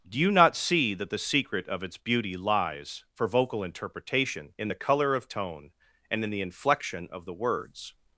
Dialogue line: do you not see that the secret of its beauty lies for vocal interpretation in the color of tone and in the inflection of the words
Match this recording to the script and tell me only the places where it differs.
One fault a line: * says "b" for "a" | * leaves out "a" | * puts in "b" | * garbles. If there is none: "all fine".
all fine